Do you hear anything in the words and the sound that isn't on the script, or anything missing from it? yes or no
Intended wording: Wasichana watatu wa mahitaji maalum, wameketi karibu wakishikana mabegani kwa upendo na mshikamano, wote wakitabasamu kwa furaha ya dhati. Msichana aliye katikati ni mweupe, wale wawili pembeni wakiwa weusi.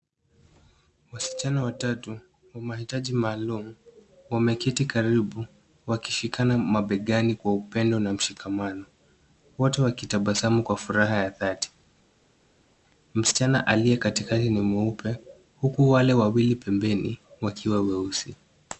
yes